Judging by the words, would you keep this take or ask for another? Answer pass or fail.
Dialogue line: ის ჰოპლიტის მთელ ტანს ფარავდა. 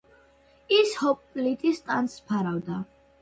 fail